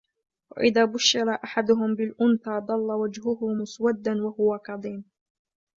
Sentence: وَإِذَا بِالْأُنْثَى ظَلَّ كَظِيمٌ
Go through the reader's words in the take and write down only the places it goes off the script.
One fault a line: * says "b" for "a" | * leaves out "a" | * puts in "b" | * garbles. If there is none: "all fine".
* puts in "بُشِّرَ أَحَدُهُمْ"
* puts in "وَجْهُهُ مُسْوَدًّا وَهُوَ"